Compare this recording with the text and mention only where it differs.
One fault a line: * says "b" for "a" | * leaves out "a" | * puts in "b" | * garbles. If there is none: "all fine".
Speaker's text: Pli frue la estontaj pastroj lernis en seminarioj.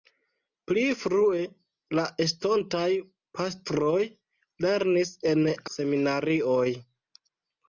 all fine